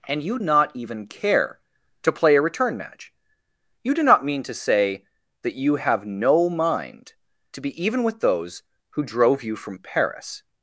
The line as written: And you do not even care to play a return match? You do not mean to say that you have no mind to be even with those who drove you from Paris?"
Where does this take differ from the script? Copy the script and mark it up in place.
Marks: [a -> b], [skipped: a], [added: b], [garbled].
And you [skipped: do] not even care to play a return match? You do not mean to say that you have no mind to be even with those who drove you from Paris?"